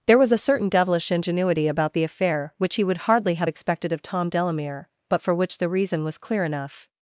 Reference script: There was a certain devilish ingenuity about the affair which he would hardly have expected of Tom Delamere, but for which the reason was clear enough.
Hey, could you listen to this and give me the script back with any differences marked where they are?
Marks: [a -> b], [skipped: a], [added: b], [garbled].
There was a certain devilish ingenuity about the affair which he would hardly have expected of Tom Delamere, but for which the reason was clear enough.